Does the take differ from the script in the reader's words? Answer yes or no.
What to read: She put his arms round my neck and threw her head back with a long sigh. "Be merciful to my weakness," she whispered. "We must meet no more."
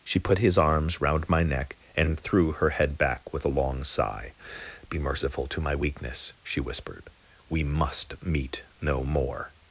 no